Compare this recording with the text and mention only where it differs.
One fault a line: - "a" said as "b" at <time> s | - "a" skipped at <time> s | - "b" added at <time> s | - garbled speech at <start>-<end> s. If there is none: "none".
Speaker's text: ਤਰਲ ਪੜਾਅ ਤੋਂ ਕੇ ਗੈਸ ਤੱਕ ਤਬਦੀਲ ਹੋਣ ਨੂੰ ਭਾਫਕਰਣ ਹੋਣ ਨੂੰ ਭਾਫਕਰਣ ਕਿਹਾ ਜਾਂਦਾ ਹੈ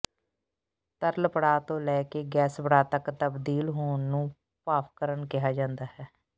- "ਲੈ" added at 1.8 s
- "ਪੜਾਅ" added at 2.6 s
- "ਹੋਣ ਨੂੰ ਭਾਫਕਰਣ" skipped at 5.3 s